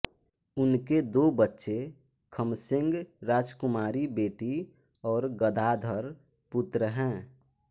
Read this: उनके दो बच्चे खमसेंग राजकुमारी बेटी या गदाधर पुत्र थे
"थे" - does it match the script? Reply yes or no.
no